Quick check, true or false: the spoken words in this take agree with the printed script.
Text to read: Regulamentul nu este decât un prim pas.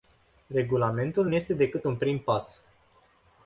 true